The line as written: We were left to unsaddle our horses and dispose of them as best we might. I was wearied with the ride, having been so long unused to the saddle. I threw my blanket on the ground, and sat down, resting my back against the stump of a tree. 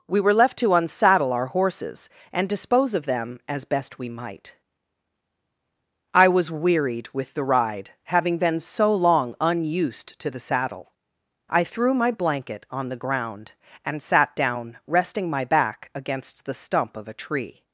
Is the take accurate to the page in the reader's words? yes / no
yes